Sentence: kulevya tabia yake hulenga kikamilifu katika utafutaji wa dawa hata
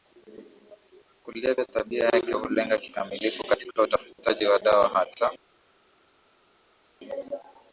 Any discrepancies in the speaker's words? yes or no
no